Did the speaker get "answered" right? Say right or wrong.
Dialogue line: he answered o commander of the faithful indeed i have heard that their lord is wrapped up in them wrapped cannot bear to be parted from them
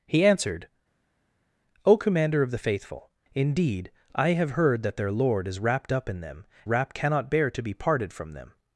right